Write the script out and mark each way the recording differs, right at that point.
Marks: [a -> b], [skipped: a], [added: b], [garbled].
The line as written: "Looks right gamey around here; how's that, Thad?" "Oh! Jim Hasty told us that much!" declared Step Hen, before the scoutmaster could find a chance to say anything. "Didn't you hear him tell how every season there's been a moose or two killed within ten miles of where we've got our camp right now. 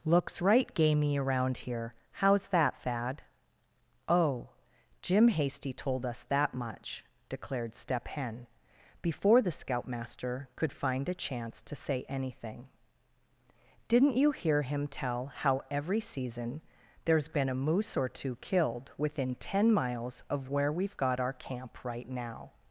"Looks right gamey around here; how's that, Thad?" "Oh! Jim Hasty told us that much!" declared Step Hen, before the scoutmaster could find a chance to say anything. "Didn't you hear him tell how every season there's been a moose or two killed within ten miles of where we've got our camp right now.